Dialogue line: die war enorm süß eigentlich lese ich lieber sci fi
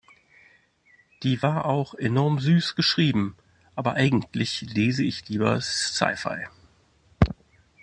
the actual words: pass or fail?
fail